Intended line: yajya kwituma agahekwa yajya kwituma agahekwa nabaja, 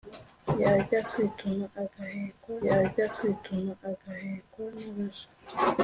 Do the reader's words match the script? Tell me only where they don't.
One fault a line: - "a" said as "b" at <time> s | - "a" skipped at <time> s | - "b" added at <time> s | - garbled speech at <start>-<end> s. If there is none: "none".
none